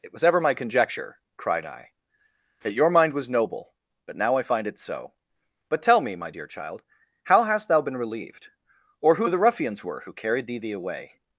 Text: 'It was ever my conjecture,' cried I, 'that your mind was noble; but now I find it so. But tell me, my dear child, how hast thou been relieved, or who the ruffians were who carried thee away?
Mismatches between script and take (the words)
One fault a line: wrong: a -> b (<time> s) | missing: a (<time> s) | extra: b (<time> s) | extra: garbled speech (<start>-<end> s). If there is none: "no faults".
extra: thee (10.6 s)